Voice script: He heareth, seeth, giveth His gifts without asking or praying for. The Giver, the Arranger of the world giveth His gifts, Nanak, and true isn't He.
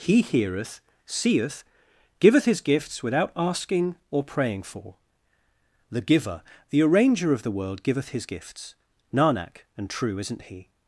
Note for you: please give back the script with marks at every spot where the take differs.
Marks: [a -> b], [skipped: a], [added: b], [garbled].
He heareth, seeth, giveth His gifts without asking or praying for. The Giver, the Arranger of the world giveth His gifts, Nanak, and true isn't He.